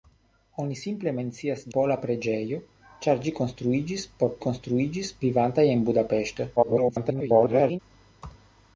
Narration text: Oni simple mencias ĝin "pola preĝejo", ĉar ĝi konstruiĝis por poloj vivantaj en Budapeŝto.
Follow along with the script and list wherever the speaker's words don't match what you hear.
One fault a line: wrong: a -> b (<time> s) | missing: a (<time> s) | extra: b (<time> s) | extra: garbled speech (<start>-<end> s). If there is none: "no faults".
missing: ĝin (1.6 s)
wrong: poloj -> konstruiĝis (4.5 s)
extra: garbled speech (6.6-7.8 s)